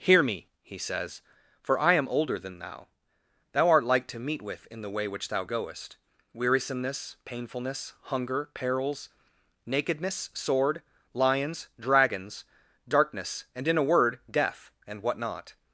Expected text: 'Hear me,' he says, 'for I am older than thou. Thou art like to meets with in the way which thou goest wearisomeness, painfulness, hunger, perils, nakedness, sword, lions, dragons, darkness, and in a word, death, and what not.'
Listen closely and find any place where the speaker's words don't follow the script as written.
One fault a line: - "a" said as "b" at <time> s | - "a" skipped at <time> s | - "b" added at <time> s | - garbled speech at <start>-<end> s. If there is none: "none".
- "meets" said as "meet" at 4.2 s